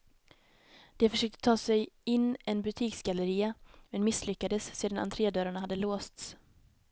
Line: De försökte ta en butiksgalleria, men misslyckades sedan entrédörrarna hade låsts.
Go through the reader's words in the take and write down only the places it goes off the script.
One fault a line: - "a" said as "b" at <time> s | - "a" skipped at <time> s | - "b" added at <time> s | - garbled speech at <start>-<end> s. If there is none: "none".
- "sig in" added at 1.5 s